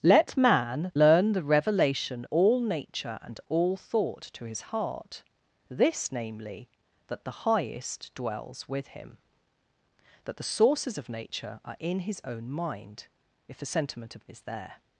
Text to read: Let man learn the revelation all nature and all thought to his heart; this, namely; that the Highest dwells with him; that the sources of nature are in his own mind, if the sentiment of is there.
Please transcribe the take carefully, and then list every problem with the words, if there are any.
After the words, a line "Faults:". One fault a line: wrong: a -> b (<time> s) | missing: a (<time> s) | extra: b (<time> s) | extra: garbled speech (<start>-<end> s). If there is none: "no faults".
Let man learn the revelation all nature and all thought to his heart; this, namely; that the Highest dwells with him; that the sources of nature are in his own mind, if the sentiment of is there.
Faults:
no faults